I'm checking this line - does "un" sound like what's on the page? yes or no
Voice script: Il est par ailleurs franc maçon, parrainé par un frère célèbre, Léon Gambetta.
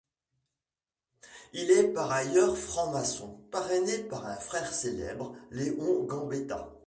yes